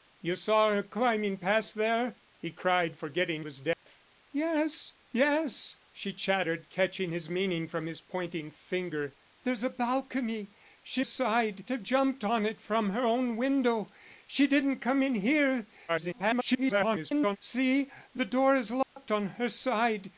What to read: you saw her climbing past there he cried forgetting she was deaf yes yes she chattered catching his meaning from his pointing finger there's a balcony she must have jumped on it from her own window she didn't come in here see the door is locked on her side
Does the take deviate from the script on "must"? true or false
true